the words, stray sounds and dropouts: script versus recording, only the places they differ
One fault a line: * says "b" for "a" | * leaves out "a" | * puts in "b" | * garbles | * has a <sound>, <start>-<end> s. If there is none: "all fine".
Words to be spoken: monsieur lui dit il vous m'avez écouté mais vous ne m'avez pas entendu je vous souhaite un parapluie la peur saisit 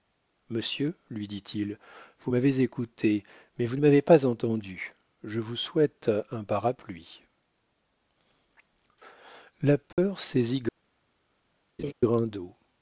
* has a dropout, 9.9-10.0 s
* has a laugh, 11.8-11.9 s